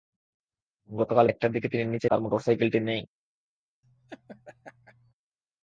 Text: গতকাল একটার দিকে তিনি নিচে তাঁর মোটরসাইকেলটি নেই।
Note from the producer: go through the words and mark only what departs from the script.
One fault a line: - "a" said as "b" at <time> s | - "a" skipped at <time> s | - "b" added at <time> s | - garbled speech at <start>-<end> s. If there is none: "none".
none